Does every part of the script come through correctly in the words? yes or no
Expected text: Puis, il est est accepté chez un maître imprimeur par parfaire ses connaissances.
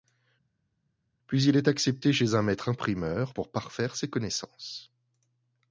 no